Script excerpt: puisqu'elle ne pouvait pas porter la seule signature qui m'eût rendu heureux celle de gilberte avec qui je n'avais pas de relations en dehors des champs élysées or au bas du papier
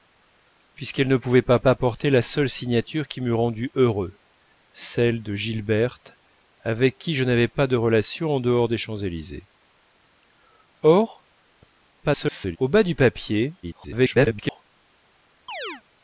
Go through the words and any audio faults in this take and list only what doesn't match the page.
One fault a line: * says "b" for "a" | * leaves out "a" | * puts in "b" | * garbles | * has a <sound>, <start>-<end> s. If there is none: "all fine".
* puts in "pas"
* garbles
* garbles
* has a chirp, 15.5-15.8 s